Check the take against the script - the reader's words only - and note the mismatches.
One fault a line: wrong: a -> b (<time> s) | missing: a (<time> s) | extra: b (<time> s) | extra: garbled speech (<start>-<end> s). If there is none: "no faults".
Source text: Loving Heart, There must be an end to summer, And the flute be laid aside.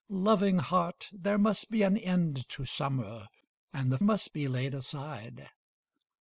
wrong: flute -> must (4.0 s)